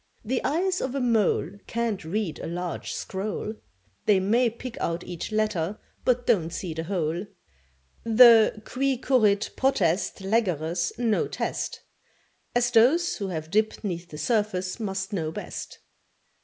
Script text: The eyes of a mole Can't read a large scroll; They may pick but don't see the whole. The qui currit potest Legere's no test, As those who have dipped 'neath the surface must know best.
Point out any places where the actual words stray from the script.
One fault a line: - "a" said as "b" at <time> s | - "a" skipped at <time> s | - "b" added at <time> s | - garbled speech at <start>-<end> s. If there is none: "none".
- "out each letter" added at 4.8 s